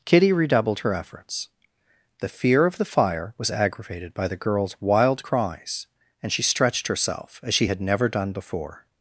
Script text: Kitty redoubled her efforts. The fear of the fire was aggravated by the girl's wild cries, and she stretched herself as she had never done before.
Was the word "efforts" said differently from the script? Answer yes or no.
no